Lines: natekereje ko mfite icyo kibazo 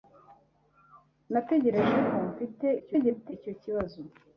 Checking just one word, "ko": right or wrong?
right